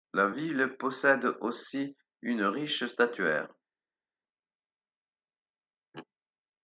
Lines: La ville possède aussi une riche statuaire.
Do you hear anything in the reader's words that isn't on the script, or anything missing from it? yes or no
no